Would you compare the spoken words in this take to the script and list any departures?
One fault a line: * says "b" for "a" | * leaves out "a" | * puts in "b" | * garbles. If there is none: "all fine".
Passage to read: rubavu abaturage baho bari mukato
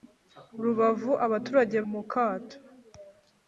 * leaves out "baho bari"